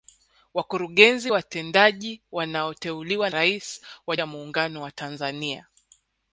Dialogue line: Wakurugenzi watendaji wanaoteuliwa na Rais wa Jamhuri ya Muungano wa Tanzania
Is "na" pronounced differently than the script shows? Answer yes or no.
yes